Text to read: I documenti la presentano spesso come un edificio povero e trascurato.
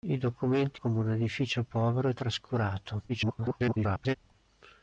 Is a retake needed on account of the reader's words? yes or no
yes